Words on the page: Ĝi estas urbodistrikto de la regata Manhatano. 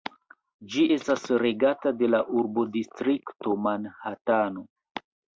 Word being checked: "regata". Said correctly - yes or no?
no